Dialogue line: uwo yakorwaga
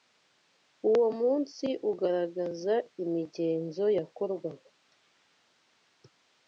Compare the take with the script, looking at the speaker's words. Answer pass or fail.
fail